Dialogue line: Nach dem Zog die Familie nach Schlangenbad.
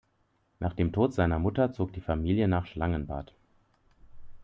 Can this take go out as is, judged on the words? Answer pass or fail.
fail